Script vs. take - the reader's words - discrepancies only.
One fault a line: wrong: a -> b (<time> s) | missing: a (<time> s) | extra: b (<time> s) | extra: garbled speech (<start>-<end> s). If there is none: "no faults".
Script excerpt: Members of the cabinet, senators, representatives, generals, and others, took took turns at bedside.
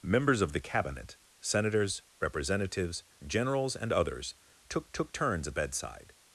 no faults